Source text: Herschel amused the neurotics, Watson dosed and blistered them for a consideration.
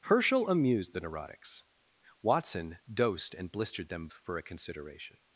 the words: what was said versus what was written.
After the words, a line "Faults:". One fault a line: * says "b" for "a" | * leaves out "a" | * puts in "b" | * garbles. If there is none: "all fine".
Herschel amused the neurotics, Watson dosed and blistered them for a consideration.
Faults:
all fine